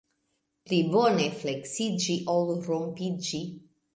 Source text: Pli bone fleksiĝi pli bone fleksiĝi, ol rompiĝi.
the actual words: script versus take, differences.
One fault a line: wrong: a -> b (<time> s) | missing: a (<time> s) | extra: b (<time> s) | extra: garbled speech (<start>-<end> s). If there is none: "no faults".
missing: pli bone fleksiĝi (2.2 s)